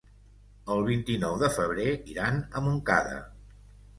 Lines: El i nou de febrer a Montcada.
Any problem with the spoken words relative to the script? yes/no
yes